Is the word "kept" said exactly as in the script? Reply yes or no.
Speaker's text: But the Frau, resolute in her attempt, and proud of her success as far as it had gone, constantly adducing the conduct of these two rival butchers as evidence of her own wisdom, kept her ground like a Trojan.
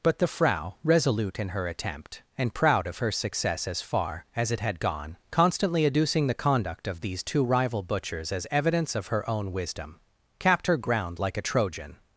no